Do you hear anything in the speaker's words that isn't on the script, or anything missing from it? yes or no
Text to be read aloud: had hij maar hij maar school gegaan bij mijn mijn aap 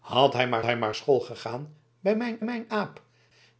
no